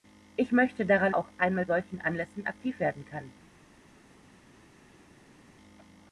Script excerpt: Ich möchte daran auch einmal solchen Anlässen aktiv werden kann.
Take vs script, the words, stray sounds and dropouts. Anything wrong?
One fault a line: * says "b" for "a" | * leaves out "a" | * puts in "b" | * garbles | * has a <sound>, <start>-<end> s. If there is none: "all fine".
all fine